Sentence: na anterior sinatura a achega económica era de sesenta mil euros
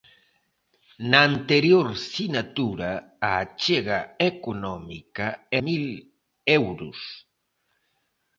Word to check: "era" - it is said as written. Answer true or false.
false